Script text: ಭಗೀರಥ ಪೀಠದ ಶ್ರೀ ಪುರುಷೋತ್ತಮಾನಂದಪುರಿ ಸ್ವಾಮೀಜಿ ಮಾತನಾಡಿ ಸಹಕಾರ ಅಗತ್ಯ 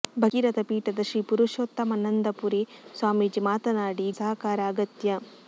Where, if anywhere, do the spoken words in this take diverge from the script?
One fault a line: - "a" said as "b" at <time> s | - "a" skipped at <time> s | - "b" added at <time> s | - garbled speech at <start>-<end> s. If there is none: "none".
none